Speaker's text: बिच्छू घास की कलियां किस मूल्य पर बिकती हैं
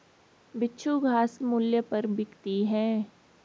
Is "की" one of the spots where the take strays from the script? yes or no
yes